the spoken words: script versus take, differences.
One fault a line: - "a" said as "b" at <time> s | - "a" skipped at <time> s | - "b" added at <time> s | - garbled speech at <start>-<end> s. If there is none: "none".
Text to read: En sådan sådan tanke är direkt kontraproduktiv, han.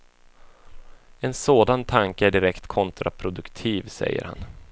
- "sådan" skipped at 1.9 s
- "säger" added at 3.9 s